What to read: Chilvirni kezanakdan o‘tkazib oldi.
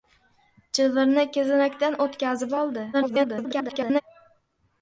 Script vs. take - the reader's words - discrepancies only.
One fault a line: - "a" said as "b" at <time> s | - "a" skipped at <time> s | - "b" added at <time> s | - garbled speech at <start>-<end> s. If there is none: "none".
- garbled speech at 2.9-4.0 s